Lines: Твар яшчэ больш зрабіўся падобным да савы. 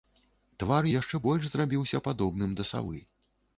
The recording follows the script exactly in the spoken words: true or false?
true